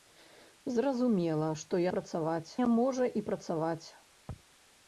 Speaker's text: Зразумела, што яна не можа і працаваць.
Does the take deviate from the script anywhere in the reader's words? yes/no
yes